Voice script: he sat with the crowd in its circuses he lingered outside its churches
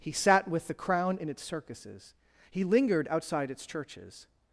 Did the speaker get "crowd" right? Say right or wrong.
wrong